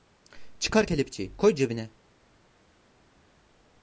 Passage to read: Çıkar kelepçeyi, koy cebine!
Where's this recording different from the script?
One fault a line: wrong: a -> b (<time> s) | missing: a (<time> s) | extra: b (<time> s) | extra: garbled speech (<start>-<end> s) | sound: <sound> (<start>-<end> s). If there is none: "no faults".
no faults